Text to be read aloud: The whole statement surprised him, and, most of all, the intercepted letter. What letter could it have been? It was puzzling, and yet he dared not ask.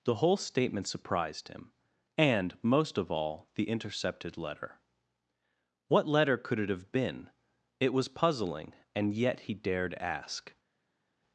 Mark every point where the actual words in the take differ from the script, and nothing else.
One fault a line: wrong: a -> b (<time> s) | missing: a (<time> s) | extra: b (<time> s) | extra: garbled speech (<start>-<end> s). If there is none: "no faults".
missing: not (9.9 s)